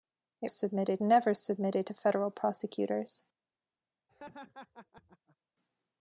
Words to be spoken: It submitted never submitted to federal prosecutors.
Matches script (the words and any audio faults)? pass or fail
fail